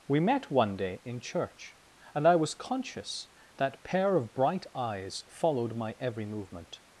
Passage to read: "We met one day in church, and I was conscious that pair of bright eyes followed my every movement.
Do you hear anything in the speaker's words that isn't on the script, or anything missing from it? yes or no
no